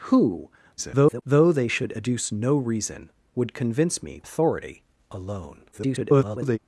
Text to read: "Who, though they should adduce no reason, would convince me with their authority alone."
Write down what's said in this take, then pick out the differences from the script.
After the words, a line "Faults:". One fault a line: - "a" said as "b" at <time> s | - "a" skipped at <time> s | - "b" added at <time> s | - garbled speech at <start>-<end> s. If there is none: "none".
"Who, [garbled] though they should adduce no reason, would convince me authority alone." [garbled]
Faults:
- garbled speech at 0.8-1.2 s
- "with their" skipped at 4.2 s
- garbled speech at 5.7-6.6 s